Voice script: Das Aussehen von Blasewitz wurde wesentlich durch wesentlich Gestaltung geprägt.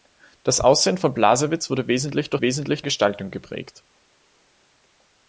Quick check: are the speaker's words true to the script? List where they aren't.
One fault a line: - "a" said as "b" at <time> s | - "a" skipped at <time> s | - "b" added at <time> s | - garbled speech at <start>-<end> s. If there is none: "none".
none